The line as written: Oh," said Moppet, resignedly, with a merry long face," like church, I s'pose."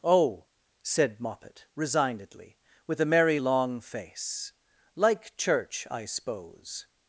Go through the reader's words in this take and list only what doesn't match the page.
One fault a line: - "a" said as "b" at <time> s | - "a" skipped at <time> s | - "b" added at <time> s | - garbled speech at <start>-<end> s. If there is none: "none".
none